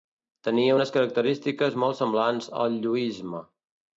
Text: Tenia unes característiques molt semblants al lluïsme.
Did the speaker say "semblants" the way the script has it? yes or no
yes